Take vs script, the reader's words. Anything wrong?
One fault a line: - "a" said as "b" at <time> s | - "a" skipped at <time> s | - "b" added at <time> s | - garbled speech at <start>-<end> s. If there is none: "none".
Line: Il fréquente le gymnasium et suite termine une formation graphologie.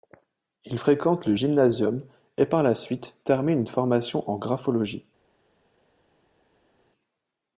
- "par la" added at 2.5 s
- "en" added at 4.3 s